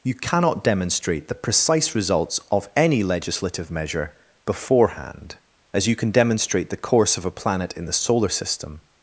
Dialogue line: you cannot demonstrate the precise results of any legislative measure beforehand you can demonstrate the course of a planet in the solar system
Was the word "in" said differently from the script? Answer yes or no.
no